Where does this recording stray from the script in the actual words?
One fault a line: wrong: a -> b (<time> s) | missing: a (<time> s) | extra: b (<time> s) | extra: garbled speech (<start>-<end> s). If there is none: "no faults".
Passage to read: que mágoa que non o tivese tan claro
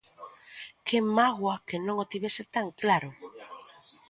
no faults